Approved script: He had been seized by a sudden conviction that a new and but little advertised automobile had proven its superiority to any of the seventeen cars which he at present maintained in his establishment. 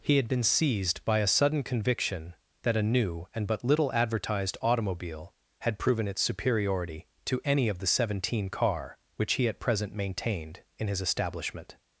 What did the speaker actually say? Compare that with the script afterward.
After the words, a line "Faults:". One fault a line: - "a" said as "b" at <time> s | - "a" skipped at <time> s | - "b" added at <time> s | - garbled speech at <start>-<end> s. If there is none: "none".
He had been seized by a sudden conviction that a new and but little advertised automobile had proven its superiority to any of the seventeen car which he at present maintained in his establishment.
Faults:
- "cars" said as "car" at 8.5 s